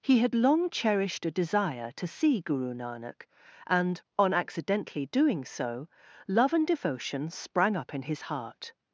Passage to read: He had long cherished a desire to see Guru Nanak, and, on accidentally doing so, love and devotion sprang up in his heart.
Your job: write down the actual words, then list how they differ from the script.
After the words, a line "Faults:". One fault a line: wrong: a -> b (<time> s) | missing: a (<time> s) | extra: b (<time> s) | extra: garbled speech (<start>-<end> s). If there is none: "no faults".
He had long cherished a desire to see Guru Nanak, and, on accidentally doing so, love and devotion sprang up in his heart.
Faults:
no faults